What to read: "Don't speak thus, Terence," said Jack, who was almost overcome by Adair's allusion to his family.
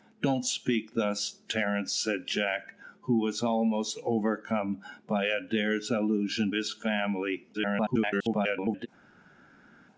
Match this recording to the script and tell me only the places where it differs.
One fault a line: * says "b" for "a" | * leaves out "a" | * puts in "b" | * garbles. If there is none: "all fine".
* leaves out "to"
* garbles